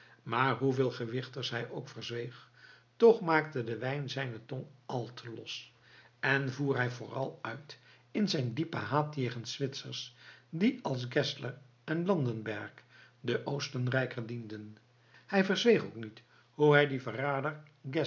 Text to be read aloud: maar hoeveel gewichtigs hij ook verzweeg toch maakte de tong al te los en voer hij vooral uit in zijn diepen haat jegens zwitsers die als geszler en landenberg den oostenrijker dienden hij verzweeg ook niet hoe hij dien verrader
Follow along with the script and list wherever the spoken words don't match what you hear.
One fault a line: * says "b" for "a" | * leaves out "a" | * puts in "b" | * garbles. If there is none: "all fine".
* puts in "wijn zijne"